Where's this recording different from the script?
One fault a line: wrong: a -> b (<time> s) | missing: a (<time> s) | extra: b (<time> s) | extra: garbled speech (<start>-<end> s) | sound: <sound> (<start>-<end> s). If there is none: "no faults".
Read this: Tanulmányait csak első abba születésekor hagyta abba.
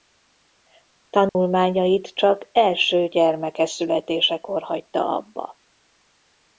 sound: dropout (1.3-1.4 s)
wrong: abba -> gyermeke (3.1 s)